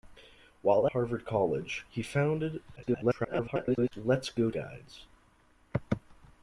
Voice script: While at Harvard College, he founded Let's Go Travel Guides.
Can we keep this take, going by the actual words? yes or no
no